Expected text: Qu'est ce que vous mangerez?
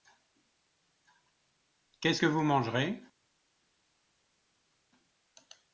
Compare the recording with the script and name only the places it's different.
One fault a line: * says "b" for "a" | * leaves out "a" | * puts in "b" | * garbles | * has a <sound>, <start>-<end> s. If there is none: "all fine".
all fine